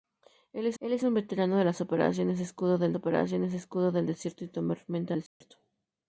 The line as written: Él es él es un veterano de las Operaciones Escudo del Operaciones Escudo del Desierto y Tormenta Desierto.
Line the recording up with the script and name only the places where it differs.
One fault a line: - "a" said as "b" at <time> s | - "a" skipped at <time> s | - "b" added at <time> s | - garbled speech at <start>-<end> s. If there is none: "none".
none